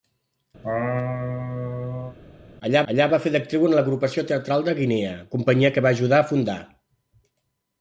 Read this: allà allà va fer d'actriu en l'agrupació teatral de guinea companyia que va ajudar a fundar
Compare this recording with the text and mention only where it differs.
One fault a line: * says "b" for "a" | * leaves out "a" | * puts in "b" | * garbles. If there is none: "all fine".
all fine